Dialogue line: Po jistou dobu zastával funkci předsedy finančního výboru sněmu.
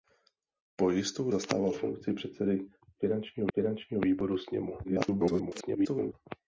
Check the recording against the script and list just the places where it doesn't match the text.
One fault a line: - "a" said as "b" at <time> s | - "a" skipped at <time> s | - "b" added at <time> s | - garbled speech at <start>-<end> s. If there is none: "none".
- "dobu" skipped at 1.3 s
- "finančního" added at 3.5 s
- garbled speech at 4.8-6.1 s